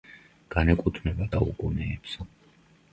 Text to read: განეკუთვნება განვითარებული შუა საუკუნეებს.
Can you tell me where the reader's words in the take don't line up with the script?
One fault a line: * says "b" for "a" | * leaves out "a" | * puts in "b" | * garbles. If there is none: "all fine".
* leaves out "განვითარებული შუა"